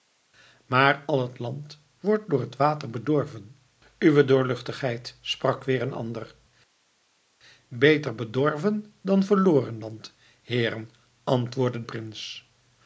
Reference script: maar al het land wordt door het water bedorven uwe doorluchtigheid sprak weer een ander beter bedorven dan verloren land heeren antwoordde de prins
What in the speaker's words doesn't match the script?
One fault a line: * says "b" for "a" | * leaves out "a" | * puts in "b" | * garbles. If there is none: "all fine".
* leaves out "de"